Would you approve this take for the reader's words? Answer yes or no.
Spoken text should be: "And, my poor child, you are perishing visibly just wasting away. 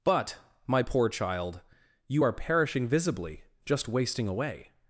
no